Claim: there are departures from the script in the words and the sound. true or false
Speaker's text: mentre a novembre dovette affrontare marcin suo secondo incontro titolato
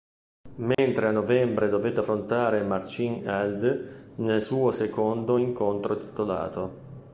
true